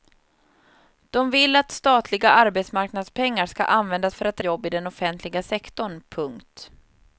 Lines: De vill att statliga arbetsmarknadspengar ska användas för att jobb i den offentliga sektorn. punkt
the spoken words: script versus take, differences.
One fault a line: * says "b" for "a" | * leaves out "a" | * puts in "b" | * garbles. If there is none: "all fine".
all fine